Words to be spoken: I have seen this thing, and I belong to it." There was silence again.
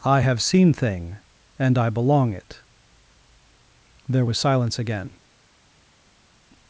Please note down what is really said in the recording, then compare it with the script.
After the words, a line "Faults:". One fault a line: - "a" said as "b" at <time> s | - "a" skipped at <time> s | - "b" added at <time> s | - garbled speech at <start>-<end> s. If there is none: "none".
I have seen thing, and I belong it." There was silence again.
Faults:
- "this" skipped at 0.7 s
- "to" skipped at 2.3 s